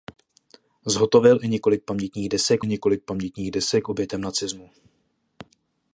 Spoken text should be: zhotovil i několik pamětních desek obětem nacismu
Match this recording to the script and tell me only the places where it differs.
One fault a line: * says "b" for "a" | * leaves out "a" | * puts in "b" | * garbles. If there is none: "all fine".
* puts in "několik pamětních desek"